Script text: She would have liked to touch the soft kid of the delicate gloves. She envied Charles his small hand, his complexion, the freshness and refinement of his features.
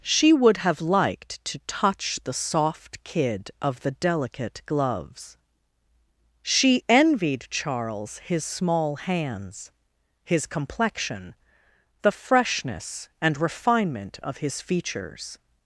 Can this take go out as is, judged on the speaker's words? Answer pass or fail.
fail